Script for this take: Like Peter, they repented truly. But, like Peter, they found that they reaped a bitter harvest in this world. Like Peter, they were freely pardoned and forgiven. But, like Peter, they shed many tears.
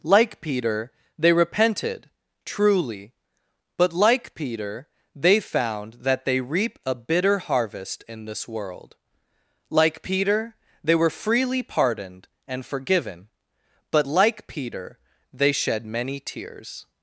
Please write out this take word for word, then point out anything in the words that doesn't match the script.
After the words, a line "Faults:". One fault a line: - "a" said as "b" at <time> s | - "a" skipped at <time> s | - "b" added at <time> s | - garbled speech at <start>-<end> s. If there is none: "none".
Like Peter, they repented truly. But, like Peter, they found that they reap a bitter harvest in this world. Like Peter, they were freely pardoned and forgiven. But, like Peter, they shed many tears.
Faults:
- "reaped" said as "reap" at 6.4 s